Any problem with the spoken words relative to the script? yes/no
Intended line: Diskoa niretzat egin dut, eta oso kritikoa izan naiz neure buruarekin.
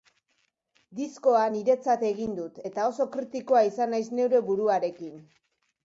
no